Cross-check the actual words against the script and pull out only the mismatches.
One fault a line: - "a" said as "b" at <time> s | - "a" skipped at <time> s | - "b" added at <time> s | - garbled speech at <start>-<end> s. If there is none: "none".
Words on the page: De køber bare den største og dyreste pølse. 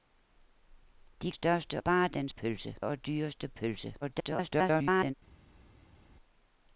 - "køber" said as "største" at 1.3 s
- "største" said as "pølse" at 2.3 s
- garbled speech at 4.0-5.1 s